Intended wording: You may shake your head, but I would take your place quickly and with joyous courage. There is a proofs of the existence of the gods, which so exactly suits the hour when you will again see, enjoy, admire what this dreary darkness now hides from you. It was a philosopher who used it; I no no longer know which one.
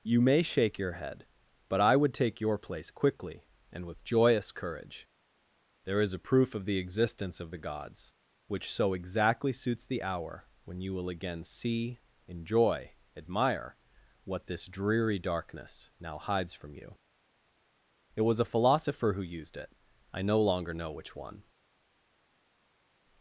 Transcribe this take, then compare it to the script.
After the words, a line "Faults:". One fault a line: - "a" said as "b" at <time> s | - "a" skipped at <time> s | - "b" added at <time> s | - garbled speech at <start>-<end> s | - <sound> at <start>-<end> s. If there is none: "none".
You may shake your head, but I would take your place quickly and with joyous courage. There is a proof of the existence of the gods, which so exactly suits the hour when you will again see, enjoy, admire what this dreary darkness now hides from you. It was a philosopher who used it; I no longer know which one.
Faults:
- "proofs" said as "proof" at 6.2 s
- "no" skipped at 20.4 s